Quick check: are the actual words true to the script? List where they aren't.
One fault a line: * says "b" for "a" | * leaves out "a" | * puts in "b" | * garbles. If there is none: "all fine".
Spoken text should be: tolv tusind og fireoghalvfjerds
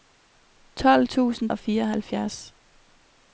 all fine